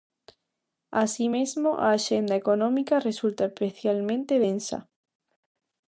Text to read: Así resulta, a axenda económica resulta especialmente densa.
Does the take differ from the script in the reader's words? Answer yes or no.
yes